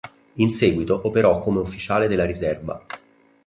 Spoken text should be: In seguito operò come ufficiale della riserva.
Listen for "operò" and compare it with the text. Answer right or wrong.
right